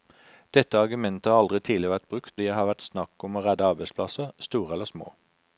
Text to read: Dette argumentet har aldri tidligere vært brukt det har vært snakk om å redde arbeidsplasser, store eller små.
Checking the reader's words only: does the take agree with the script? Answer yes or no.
yes